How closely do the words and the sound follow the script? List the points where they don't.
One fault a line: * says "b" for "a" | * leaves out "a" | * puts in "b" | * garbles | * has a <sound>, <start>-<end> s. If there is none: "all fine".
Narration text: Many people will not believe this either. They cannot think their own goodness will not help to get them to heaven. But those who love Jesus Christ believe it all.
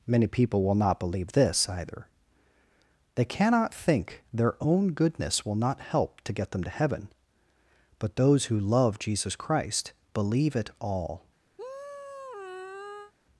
* has a sigh, 11.6-13.1 s